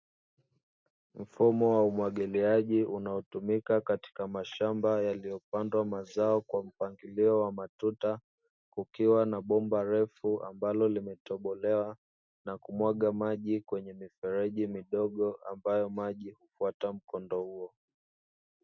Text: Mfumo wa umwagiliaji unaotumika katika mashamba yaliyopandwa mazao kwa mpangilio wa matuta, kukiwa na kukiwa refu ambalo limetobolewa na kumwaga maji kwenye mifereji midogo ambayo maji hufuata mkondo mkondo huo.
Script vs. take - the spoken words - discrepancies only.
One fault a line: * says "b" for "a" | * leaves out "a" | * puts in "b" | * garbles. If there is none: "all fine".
* says "bomba" for "kukiwa"
* leaves out "mkondo"